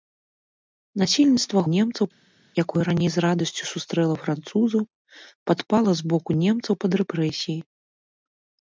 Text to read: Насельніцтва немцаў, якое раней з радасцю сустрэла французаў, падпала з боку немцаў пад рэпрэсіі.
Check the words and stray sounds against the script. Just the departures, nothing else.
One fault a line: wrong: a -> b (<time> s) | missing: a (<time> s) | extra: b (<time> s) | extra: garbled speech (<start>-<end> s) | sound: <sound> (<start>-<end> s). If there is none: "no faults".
no faults